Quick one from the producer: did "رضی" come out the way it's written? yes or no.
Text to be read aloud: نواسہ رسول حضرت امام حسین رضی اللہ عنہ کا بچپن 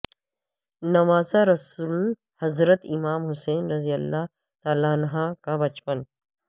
yes